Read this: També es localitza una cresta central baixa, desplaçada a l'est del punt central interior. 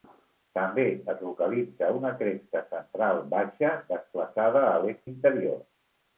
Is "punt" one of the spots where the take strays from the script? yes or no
yes